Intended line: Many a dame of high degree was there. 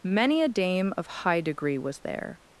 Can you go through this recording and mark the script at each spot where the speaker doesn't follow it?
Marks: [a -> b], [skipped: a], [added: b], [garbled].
Many a dame of high degree was there.